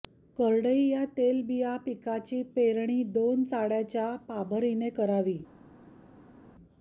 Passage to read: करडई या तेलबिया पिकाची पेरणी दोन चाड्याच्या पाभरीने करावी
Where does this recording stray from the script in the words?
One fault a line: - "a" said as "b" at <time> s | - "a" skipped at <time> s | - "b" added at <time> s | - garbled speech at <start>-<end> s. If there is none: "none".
none